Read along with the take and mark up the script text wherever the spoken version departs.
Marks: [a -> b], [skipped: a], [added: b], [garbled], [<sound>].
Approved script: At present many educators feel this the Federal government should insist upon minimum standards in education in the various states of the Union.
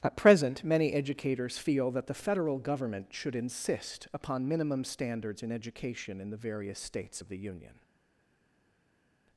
At present many educators feel [this -> that] the Federal government should insist upon minimum standards in education in the various states of the Union.